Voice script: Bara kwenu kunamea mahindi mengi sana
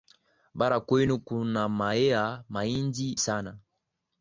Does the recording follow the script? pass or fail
fail